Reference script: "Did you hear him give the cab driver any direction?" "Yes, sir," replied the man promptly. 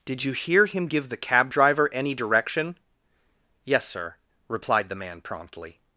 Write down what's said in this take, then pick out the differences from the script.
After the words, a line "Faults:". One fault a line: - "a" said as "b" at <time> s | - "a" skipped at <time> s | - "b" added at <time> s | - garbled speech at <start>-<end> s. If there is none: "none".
"Did you hear him give the cab driver any direction?" "Yes, sir," replied the man promptly.
Faults:
none